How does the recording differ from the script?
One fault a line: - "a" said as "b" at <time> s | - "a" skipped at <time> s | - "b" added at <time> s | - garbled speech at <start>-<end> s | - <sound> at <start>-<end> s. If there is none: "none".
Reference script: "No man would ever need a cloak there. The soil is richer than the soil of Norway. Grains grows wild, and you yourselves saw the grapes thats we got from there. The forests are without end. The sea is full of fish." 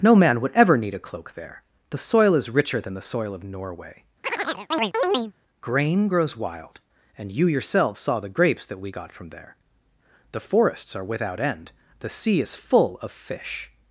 - chirp at 4.2-5.3 s
- "Grains" said as "Grain" at 5.6 s
- "thats" said as "that" at 8.7 s